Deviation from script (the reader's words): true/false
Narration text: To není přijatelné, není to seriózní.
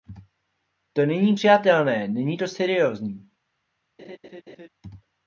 false